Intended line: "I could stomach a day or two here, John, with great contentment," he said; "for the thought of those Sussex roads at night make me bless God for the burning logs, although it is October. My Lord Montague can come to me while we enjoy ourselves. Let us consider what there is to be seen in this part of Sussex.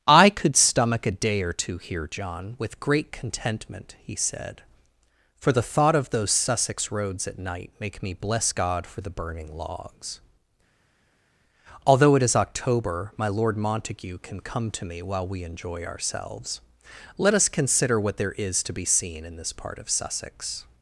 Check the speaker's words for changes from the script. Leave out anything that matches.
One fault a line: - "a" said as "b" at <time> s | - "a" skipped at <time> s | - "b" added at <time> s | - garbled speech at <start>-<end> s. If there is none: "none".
none